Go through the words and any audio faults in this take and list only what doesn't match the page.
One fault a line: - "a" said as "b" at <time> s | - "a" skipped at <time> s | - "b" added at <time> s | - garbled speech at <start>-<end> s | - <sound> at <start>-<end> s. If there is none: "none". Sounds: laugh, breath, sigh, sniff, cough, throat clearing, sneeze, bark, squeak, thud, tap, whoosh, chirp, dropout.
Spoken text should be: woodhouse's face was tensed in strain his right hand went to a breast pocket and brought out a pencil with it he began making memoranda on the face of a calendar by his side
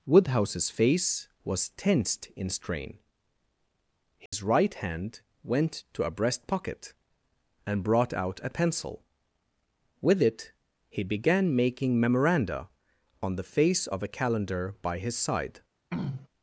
- dropout at 4.3-4.3 s
- throat clearing at 15.9-16.3 s